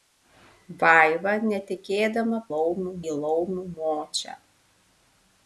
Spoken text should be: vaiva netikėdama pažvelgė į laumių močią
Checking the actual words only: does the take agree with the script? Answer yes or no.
no